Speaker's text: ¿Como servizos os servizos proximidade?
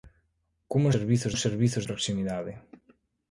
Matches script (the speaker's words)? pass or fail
pass